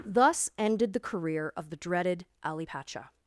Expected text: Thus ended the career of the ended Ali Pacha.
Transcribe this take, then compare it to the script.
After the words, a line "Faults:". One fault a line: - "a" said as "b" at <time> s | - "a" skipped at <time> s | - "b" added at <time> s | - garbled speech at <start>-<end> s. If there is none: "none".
Thus ended the career of the dreaded Ali Pacha.
Faults:
- "ended" said as "dreaded" at 1.8 s